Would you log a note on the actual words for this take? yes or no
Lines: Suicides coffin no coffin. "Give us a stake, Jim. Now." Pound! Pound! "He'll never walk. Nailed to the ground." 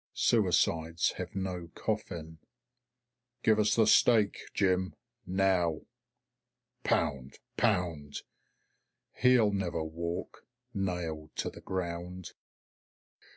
yes